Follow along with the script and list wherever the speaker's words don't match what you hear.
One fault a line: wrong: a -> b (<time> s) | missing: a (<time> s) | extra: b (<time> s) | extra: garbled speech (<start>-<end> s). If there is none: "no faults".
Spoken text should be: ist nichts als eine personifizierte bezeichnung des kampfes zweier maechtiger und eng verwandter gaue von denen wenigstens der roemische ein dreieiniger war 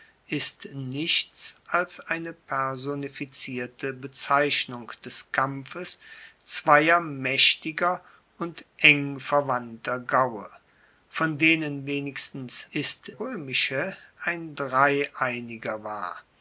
wrong: der -> ist (12.7 s)